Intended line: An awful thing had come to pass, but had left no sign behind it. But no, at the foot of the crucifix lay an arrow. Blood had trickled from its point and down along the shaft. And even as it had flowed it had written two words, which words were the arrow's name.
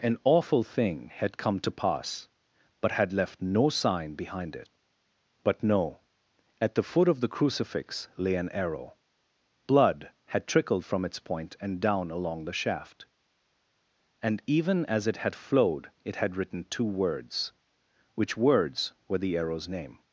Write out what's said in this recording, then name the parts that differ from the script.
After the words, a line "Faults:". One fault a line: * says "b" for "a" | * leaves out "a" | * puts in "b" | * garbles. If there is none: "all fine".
An awful thing had come to pass, but had left no sign behind it. But no, at the foot of the crucifix lay an arrow. Blood had trickled from its point and down along the shaft. And even as it had flowed it had written two words, which words were the arrow's name.
Faults:
all fine